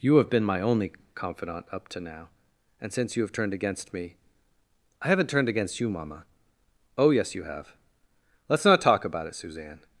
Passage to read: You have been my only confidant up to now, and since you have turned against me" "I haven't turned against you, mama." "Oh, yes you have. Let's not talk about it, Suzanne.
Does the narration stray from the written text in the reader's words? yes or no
no